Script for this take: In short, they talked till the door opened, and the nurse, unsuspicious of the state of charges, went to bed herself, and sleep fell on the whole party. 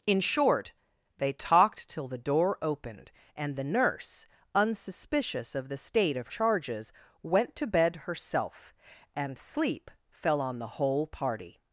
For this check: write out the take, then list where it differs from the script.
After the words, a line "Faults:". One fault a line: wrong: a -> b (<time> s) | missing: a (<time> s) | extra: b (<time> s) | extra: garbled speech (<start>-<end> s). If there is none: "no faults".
In short, they talked till the door opened, and the nurse, unsuspicious of the state of charges, went to bed herself, and sleep fell on the whole party.
Faults:
no faults